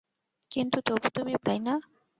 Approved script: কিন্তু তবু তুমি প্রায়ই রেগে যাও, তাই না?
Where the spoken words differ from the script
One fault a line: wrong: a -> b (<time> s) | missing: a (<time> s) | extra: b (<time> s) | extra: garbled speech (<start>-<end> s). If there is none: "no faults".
missing: প্রায়ই রেগে যাও (1.3 s)